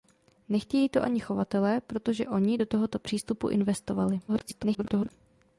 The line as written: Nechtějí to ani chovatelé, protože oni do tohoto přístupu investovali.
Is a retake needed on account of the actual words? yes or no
yes